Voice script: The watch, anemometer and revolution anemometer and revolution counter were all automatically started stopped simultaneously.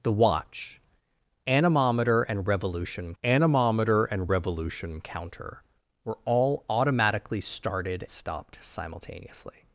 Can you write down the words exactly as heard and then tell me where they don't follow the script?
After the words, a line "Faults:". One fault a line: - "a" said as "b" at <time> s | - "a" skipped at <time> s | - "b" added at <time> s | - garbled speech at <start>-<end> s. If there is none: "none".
The watch, anemometer and revolution anemometer and revolution counter were all automatically started stopped simultaneously.
Faults:
none